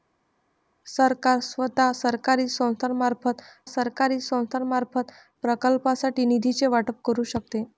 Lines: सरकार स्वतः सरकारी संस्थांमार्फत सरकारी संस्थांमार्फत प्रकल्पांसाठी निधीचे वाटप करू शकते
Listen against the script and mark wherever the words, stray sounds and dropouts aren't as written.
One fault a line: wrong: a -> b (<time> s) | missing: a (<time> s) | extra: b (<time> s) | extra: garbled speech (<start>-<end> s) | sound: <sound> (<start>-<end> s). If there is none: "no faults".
no faults